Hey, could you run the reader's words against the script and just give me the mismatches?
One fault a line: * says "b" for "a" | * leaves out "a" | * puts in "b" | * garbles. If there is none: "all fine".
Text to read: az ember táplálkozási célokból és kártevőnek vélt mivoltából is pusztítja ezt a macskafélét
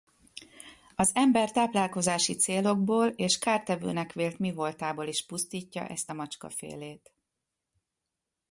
all fine